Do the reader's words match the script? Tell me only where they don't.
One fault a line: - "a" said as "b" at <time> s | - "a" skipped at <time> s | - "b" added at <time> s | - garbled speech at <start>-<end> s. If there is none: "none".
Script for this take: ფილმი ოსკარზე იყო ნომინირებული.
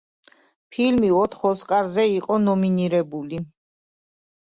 - "ოთხ" added at 1.2 s